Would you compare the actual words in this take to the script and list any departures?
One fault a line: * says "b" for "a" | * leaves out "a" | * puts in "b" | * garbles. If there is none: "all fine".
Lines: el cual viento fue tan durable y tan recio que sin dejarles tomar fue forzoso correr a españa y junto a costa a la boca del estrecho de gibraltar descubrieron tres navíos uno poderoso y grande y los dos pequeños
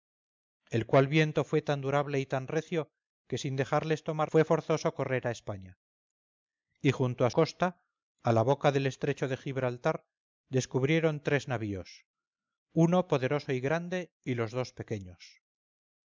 all fine